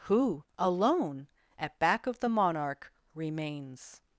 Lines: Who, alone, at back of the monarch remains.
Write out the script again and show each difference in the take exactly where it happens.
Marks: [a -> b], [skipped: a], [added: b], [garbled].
Who, alone, at back of the monarch remains.